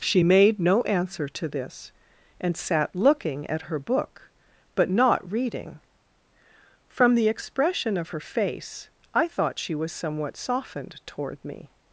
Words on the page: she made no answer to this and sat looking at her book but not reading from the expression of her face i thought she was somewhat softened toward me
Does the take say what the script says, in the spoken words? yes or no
yes